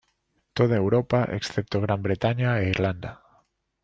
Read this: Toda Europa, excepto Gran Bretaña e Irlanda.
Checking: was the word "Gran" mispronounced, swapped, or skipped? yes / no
no